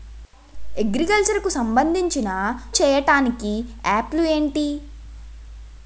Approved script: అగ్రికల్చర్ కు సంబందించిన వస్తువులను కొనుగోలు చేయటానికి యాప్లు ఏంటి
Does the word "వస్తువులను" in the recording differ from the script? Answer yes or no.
yes